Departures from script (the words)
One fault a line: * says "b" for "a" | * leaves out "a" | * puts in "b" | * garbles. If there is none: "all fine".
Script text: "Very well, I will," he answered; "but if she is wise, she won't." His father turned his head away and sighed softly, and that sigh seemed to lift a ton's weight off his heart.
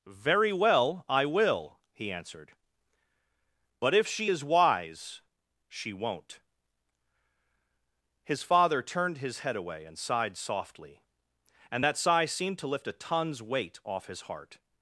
all fine